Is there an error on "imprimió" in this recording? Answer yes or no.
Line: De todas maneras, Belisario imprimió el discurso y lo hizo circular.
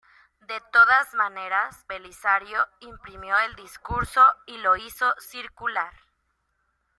no